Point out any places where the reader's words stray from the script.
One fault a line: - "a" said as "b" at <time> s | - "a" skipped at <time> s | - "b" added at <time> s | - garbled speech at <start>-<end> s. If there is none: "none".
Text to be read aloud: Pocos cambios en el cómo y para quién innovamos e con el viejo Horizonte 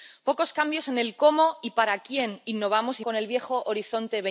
none